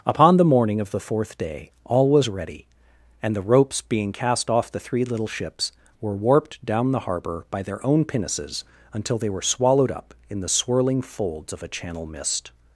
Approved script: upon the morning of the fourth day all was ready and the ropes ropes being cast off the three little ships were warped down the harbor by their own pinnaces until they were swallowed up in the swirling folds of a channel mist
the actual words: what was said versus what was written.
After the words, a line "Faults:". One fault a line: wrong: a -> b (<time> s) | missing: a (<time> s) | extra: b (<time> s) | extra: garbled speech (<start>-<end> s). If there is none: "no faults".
upon the morning of the fourth day all was ready and the ropes being cast off the three little ships were warped down the harbor by their own pinnaces until they were swallowed up in the swirling folds of a channel mist
Faults:
missing: ropes (3.8 s)